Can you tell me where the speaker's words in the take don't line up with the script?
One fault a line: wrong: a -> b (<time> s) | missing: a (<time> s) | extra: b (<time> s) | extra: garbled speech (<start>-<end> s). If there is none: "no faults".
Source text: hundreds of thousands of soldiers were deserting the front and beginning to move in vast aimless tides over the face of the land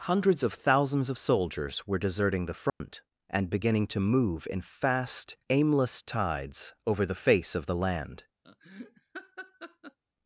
wrong: vast -> fast (4.6 s)